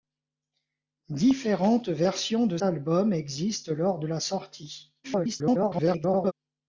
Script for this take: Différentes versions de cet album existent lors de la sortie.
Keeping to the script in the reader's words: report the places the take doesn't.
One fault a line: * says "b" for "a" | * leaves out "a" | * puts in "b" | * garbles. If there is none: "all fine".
* leaves out "cet"
* garbles